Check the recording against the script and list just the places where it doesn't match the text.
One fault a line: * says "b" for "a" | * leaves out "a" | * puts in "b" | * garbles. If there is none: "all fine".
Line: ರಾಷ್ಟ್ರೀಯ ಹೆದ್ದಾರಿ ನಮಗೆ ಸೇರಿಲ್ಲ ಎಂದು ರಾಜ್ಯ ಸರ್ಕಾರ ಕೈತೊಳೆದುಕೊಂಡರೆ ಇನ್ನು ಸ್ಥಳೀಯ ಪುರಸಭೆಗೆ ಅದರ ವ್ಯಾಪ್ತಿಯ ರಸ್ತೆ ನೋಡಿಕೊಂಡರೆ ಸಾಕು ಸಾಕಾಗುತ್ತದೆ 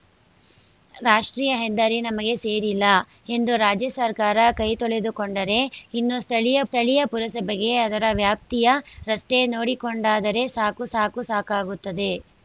* puts in "ಸ್ಥಳೀಯ"
* puts in "ಸಾಕು"